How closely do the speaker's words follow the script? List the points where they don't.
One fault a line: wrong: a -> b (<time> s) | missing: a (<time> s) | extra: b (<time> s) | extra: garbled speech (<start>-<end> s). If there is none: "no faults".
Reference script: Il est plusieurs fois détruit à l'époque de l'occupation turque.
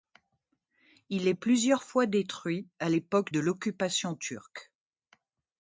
no faults